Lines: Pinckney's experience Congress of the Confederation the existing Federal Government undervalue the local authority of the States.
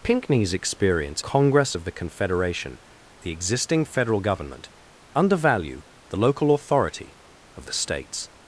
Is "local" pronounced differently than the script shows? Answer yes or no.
no